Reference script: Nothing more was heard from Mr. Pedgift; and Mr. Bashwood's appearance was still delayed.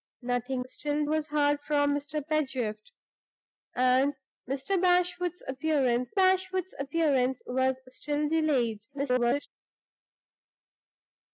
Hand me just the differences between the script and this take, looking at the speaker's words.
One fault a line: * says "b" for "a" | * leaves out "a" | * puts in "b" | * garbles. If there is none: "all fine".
* says "still" for "more"
* puts in "bashwood's appearance"
* garbles